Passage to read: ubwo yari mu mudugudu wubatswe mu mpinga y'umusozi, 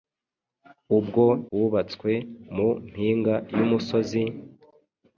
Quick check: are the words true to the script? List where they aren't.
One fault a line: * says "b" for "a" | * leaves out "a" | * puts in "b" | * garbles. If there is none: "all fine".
* leaves out "yari mu mudugudu"